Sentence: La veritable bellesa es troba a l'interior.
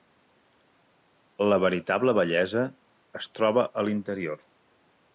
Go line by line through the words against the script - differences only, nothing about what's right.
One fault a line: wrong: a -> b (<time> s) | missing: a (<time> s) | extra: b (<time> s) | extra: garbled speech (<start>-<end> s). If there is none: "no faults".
no faults